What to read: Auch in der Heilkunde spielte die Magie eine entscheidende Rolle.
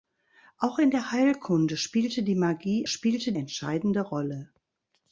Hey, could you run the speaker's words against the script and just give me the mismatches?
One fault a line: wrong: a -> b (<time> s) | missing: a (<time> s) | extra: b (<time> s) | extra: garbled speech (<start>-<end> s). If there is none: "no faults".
wrong: eine -> spielte (2.9 s)